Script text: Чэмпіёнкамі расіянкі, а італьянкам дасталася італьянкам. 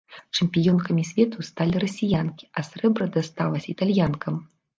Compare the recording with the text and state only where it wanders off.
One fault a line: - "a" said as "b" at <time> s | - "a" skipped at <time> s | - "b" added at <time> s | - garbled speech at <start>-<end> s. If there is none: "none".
- "свету сталі" added at 1.1 s
- "італьянкам" said as "срэбра" at 2.7 s